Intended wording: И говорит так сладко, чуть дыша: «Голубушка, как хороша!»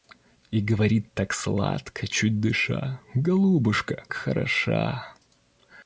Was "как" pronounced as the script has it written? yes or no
no